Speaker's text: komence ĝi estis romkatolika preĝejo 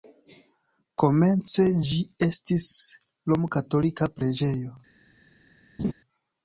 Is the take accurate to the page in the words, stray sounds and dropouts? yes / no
no